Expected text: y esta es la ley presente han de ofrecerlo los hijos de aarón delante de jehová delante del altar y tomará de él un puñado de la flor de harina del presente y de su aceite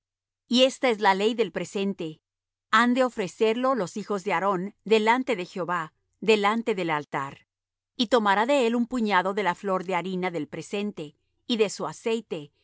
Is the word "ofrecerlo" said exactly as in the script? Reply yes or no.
yes